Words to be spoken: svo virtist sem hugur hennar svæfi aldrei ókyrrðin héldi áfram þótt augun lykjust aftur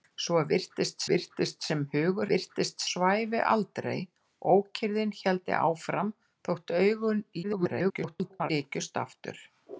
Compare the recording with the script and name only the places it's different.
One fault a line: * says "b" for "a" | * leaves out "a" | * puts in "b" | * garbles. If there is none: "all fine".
* puts in "virtist"
* says "virtist" for "hennar"
* garbles